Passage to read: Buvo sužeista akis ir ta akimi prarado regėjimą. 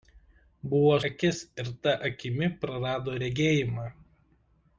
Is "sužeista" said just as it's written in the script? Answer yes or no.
no